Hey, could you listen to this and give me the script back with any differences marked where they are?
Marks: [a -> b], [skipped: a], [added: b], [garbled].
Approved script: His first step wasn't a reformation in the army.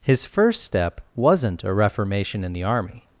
His first step wasn't a reformation in the army.